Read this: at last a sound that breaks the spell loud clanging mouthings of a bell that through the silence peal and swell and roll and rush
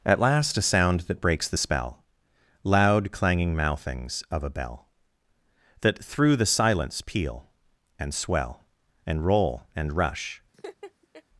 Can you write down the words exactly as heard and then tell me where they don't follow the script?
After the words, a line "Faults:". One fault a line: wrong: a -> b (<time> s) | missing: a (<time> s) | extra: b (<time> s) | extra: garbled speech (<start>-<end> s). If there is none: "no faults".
at last a sound that breaks the spell loud clanging mouthings of a bell that through the silence peal and swell and roll and rush
Faults:
no faults